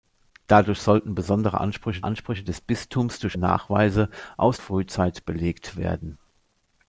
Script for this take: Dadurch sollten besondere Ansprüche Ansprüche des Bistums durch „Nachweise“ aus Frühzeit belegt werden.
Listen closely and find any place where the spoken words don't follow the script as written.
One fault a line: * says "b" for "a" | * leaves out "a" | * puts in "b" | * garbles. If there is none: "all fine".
all fine